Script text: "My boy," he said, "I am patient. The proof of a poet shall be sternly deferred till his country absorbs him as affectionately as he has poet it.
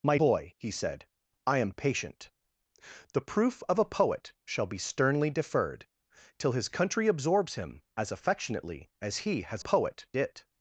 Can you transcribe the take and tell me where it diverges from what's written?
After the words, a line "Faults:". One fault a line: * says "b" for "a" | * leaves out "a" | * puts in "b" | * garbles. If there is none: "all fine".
"My boy," he said, "I am patient. The proof of a poet shall be sternly deferred till his country absorbs him as affectionately as he has poet it.
Faults:
all fine